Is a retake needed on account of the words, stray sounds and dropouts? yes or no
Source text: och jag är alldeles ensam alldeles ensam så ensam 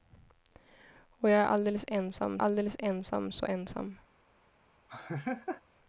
yes